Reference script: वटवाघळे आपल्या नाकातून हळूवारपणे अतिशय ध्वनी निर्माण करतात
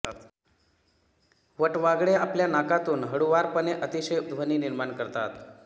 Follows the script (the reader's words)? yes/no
yes